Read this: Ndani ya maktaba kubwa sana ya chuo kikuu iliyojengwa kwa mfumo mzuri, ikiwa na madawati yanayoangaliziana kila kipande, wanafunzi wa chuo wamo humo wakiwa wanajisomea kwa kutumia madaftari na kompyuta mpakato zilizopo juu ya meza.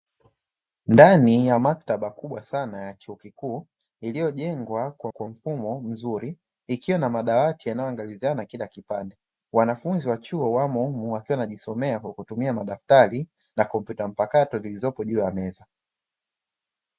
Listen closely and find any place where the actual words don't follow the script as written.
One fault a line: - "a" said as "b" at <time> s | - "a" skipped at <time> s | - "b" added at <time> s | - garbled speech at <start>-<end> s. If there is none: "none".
- "kwa" added at 5.1 s